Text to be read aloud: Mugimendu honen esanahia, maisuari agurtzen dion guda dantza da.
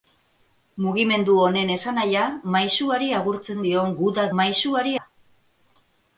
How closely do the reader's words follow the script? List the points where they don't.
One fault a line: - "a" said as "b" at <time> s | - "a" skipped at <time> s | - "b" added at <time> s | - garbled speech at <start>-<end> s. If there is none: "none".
- "dantza" said as "maisuari" at 4.4 s